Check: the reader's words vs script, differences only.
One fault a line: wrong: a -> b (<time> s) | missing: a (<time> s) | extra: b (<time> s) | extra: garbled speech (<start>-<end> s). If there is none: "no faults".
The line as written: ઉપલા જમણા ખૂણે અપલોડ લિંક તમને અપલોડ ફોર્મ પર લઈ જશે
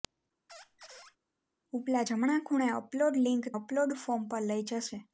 missing: તમને (3.5 s)